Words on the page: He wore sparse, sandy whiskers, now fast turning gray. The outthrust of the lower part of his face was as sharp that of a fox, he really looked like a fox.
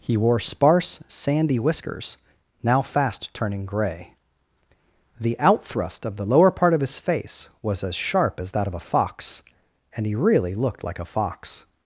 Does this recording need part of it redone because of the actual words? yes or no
yes